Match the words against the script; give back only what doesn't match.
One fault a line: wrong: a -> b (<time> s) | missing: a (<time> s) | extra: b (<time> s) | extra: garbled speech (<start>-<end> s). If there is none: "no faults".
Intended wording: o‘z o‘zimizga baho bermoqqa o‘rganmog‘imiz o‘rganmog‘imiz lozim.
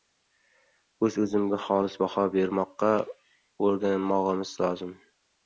extra: xolis (1.6 s)
missing: o‘rganmog‘imiz (4.5 s)